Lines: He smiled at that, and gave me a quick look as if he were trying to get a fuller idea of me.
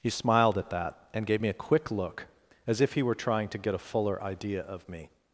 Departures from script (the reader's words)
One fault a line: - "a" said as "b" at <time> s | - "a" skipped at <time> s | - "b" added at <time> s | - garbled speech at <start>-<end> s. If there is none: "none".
none